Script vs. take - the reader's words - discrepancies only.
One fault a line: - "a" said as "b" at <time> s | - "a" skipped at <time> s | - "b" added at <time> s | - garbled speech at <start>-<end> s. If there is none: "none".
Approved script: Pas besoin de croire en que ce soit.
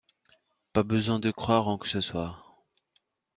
none